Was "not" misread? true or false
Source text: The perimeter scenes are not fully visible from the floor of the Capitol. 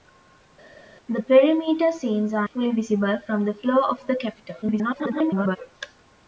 true